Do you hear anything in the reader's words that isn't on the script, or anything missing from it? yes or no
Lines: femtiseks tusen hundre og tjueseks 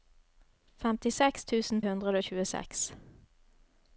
no